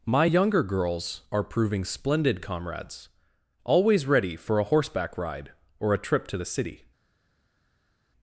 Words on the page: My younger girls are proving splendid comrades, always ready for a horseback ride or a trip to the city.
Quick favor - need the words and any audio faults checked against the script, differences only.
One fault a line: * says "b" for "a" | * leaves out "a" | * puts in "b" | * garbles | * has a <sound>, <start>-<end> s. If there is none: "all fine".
all fine